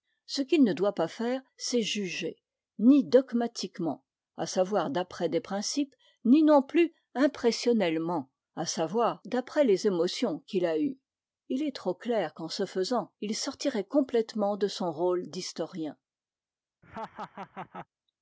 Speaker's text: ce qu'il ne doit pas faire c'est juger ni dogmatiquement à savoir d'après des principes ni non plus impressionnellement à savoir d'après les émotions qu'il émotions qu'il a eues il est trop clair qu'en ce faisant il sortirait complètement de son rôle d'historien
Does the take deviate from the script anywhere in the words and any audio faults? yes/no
yes